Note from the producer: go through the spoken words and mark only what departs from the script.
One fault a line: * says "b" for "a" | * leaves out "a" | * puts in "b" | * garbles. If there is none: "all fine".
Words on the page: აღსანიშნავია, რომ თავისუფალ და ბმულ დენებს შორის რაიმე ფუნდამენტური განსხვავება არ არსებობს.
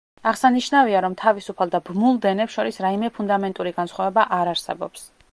all fine